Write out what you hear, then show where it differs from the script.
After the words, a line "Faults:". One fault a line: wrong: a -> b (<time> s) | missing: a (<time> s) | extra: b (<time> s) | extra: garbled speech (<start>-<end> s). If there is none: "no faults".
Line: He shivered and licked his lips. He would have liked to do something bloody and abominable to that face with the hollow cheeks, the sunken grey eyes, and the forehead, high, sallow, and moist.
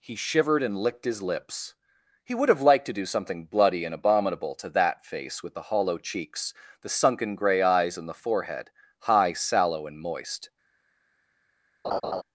He shivered and licked his lips. He would have liked to do something bloody and abominable to that face with the hollow cheeks, the sunken grey eyes, and the forehead, high, sallow, and moist.
Faults:
no faults